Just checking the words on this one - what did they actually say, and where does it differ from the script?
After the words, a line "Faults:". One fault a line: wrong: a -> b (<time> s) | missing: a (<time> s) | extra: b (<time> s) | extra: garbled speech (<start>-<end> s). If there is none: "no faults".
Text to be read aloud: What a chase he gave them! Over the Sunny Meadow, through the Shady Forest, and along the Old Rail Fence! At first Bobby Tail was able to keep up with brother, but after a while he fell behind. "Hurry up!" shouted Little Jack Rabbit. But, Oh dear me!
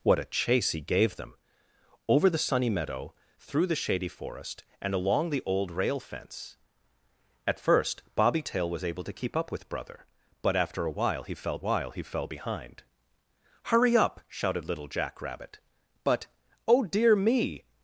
What a chase he gave them! Over the Sunny Meadow, through the Shady Forest, and along the Old Rail Fence! At first Bobby Tail was able to keep up with brother, but after a while he fell while he fell behind. "Hurry up!" shouted Little Jack Rabbit. But, Oh dear me!
Faults:
extra: while he fell (11.6 s)